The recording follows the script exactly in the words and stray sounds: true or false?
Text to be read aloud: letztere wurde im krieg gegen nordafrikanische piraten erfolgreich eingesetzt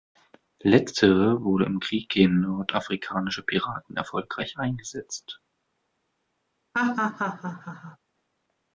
false